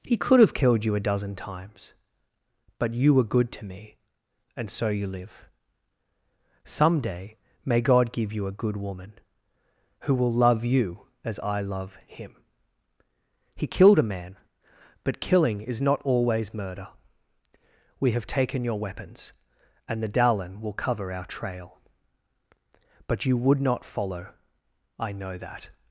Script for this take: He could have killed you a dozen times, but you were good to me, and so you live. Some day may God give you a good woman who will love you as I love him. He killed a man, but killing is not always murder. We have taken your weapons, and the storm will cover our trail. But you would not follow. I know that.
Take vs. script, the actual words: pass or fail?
fail